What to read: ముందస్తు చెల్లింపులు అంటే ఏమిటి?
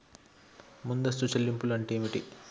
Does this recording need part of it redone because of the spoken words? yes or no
no